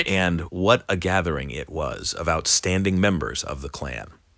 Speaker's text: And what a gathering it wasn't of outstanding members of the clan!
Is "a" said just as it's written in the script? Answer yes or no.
yes